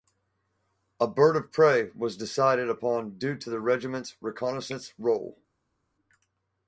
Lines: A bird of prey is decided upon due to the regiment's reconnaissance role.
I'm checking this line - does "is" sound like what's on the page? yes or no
no